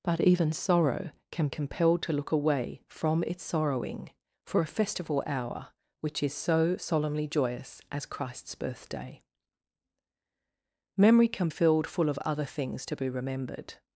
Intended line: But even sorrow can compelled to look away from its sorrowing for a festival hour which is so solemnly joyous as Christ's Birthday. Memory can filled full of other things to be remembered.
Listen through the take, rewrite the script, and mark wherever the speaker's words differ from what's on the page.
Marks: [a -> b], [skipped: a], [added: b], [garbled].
But even sorrow can compelled to look away from its sorrowing for a festival hour which is so solemnly joyous as Christ's Birthday. Memory can filled full of other things to be remembered.